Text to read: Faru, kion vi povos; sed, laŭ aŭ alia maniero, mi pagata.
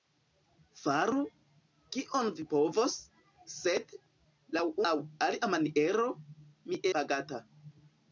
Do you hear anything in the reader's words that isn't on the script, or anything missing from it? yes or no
no